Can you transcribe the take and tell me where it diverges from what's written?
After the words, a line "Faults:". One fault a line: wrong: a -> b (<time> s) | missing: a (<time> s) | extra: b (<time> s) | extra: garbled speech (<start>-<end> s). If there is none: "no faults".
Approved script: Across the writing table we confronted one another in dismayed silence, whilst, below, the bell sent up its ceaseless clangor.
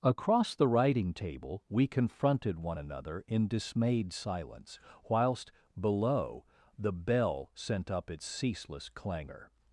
Across the writing table we confronted one another in dismayed silence, whilst, below, the bell sent up its ceaseless clangor.
Faults:
no faults